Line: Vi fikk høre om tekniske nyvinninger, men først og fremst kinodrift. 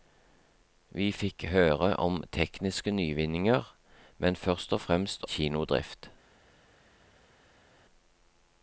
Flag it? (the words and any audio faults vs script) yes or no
no